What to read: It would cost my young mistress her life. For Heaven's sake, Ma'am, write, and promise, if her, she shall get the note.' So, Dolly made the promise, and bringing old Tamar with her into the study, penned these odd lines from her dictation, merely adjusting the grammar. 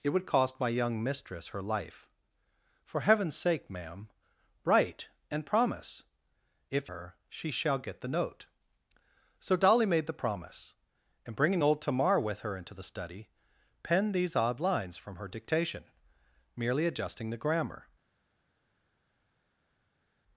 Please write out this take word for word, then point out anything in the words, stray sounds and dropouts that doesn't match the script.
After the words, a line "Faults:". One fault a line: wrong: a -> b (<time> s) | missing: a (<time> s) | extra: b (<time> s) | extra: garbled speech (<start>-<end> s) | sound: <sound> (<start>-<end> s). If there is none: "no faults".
It would cost my young mistress her life. For Heaven's sake, Ma'am, write, and promise, if her, she shall get the note.' So, Dolly made the promise, and bringing old Tamar with her into the study, penned these odd lines from her dictation, merely adjusting the grammar.
Faults:
no faults